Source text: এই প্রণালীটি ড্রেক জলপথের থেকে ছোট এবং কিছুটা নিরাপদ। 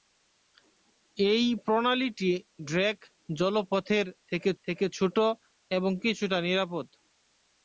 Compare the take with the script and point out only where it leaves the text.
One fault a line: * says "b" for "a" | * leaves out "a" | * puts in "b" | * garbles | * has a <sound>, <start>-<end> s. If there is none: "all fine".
* puts in "থেকে"